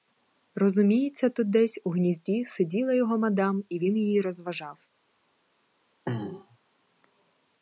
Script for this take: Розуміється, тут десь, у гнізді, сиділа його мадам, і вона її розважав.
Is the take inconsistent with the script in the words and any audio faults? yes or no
yes